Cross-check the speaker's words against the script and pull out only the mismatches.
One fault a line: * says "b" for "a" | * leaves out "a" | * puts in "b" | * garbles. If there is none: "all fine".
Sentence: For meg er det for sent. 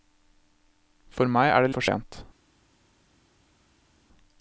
all fine